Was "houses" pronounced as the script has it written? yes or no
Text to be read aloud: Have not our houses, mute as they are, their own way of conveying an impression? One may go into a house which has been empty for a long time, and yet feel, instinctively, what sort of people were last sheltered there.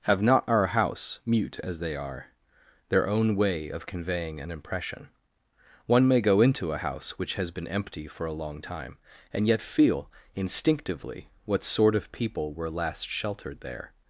no